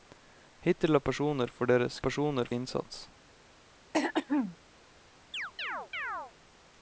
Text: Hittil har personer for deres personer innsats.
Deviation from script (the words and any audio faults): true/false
true